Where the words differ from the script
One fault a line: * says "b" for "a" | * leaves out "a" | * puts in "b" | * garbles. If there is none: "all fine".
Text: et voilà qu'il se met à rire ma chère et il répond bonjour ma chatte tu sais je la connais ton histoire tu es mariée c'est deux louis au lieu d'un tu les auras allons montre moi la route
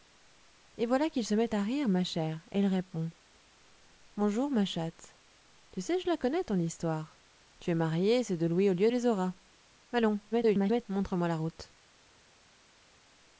* leaves out "d'un tu"
* garbles